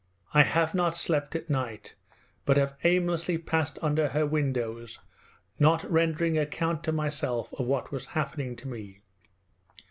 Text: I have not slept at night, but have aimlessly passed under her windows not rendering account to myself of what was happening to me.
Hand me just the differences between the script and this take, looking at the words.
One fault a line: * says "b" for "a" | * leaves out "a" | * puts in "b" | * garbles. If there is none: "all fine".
all fine